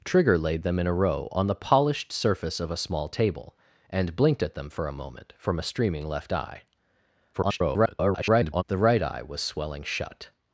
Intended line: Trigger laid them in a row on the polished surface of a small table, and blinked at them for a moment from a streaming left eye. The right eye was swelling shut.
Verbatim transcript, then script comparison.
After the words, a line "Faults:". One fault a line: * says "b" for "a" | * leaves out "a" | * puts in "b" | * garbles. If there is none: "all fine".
Trigger laid them in a row on the polished surface of a small table, and blinked at them for a moment from a streaming left eye. [garbled] The right eye was swelling shut.
Faults:
* garbles